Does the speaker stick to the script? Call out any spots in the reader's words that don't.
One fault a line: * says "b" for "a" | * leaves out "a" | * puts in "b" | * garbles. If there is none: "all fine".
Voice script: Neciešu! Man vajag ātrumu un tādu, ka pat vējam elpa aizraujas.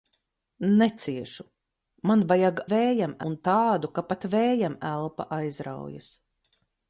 * says "vējam" for "ātrumu"